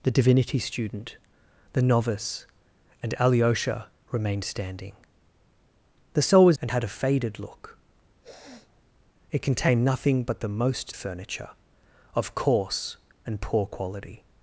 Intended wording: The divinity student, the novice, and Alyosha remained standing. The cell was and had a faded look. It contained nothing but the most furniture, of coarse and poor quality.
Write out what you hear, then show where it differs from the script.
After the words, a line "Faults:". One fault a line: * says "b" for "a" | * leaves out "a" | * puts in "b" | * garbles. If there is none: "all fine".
The divinity student, the novice, and Alyosha remained standing. The cell was and had a faded look. It contained nothing but the most furniture, of coarse and poor quality.
Faults:
all fine